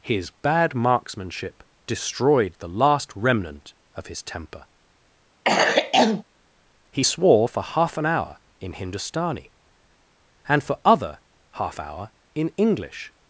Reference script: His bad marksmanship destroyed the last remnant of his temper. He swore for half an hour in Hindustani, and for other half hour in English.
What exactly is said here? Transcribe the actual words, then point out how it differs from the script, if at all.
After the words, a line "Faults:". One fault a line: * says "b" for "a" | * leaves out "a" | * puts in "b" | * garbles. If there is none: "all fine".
His bad marksmanship destroyed the last remnant of his temper. He swore for half an hour in Hindustani, and for other half hour in English.
Faults:
all fine